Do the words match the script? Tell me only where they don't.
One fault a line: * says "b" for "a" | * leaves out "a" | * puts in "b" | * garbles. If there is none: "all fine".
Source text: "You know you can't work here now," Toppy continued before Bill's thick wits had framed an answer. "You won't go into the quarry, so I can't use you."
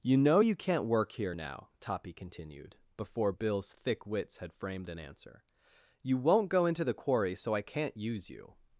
all fine